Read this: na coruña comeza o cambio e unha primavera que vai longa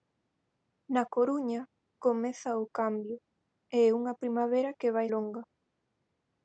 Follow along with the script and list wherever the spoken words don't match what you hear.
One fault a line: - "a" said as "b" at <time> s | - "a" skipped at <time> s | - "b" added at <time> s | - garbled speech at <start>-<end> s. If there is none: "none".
none